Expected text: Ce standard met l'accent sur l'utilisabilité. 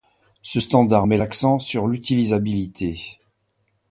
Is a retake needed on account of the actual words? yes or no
no